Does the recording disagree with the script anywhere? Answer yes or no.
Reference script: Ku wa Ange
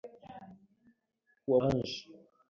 no